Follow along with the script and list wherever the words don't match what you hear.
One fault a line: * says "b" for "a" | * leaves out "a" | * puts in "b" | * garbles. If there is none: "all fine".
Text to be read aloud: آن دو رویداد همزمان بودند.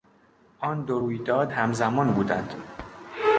all fine